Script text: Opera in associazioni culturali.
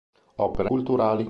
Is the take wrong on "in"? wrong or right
wrong